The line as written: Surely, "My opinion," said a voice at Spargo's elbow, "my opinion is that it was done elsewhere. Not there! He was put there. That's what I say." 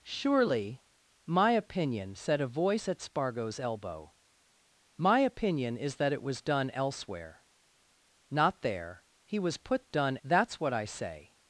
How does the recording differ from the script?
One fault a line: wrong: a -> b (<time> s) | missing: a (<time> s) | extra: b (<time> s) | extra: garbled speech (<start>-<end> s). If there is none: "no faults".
wrong: there -> done (9.9 s)